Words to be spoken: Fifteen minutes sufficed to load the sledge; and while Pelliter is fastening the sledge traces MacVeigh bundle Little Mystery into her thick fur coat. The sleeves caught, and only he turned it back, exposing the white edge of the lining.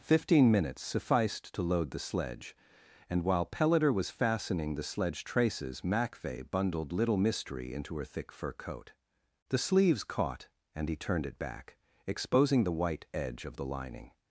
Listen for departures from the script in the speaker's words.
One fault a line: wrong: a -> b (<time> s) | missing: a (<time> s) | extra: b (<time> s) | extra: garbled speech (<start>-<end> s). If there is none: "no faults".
wrong: is -> was (3.9 s)
wrong: bundle -> bundled (6.5 s)
missing: only (10.9 s)